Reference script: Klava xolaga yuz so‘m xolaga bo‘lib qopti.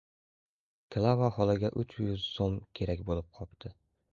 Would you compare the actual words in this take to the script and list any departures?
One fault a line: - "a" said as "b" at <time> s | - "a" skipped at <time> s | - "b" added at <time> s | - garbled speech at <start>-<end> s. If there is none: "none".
- "uch" added at 1.8 s
- "xolaga" said as "kerak" at 2.8 s